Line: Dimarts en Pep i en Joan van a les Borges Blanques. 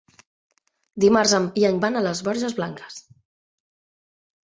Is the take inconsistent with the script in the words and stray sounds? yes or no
yes